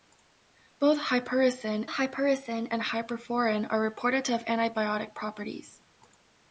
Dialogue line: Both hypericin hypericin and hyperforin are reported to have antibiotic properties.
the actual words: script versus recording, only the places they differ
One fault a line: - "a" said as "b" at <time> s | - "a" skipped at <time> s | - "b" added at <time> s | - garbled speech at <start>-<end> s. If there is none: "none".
none